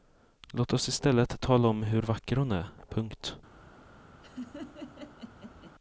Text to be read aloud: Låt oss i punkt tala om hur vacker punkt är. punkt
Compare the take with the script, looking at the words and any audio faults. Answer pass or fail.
fail